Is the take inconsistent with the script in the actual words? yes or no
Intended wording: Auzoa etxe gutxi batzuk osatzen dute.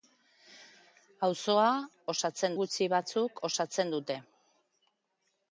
yes